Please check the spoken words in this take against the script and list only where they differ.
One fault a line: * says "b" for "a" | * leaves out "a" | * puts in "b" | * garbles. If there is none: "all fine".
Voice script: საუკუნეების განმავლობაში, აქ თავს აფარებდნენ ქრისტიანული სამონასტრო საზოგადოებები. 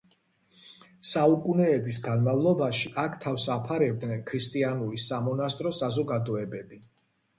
all fine